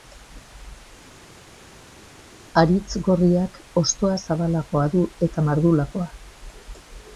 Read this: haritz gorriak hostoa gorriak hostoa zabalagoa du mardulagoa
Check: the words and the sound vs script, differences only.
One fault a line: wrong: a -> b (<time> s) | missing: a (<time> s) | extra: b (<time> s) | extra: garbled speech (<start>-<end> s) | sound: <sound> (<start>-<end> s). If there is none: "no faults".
missing: gorriak hostoa (4.2 s)
extra: eta (5.3 s)